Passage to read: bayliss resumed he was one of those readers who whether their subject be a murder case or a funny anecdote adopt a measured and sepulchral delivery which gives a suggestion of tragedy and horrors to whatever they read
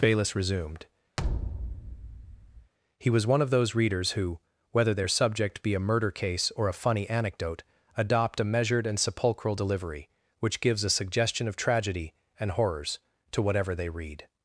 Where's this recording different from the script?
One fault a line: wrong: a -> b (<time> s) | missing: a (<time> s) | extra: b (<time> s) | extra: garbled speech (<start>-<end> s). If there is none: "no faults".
no faults